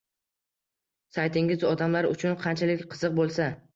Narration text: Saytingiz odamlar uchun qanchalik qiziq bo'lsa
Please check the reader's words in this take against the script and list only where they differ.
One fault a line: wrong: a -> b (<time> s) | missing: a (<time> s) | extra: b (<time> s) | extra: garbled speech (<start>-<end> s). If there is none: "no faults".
no faults